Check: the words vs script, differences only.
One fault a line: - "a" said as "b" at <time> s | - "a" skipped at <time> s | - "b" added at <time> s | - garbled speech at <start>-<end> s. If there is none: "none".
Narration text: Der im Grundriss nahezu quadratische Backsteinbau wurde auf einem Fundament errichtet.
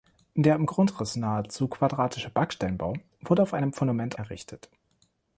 none